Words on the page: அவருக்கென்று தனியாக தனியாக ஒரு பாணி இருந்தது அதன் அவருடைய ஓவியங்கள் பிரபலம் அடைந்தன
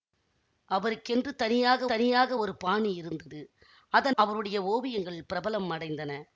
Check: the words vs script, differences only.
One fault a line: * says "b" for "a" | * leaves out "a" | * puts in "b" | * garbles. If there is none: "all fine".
all fine